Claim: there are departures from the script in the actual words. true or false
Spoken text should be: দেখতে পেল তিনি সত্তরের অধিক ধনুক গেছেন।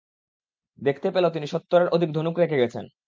true